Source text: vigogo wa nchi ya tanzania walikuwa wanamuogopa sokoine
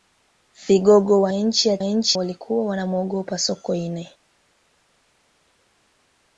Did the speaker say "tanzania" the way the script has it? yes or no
no